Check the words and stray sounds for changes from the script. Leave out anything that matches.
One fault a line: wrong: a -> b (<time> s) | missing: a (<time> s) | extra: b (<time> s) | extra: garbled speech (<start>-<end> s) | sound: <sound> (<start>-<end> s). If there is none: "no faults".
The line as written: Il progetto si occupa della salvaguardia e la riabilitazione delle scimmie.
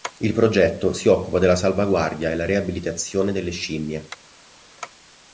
no faults